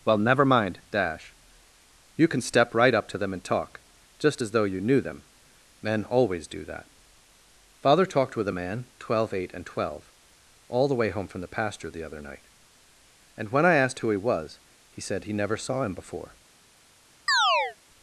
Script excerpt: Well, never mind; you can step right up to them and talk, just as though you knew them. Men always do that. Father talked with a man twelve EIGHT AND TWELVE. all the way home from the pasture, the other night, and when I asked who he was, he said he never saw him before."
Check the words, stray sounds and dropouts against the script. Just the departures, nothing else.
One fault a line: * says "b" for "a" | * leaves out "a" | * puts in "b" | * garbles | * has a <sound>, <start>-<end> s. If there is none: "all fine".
* puts in "dash"
* has a chirp, 17.3-17.8 s